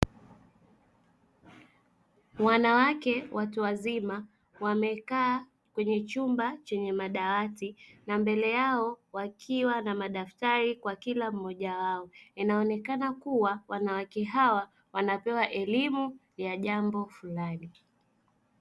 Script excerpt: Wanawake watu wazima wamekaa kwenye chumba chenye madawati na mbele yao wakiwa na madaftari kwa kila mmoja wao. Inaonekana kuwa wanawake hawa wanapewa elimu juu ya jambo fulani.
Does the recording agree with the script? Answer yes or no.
no